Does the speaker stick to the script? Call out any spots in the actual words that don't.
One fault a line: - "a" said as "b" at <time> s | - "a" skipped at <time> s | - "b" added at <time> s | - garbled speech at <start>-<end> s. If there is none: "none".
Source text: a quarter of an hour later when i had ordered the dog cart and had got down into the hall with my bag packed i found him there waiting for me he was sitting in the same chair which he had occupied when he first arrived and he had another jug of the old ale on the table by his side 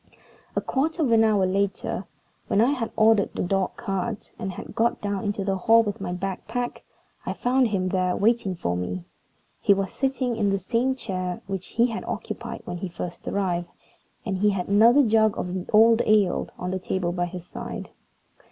none